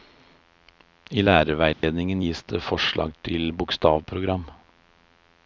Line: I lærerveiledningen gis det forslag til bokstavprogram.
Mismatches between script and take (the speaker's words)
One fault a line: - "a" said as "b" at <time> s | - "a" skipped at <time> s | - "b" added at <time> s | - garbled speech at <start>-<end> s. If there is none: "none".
none